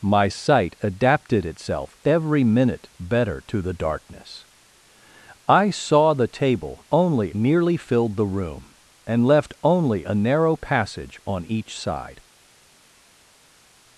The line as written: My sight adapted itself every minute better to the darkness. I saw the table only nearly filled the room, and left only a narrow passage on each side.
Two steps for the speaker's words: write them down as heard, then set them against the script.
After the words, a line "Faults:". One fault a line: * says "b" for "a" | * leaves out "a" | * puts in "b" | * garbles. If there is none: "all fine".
My sight adapted itself every minute better to the darkness. I saw the table only nearly filled the room, and left only a narrow passage on each side.
Faults:
all fine